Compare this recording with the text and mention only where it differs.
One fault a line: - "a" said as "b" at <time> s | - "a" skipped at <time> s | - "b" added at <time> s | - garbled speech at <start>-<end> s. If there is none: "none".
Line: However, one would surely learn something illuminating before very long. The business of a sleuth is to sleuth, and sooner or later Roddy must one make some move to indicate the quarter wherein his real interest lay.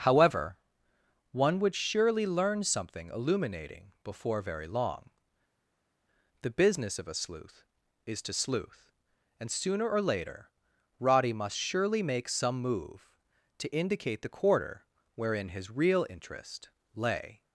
- "one" said as "surely" at 11.6 s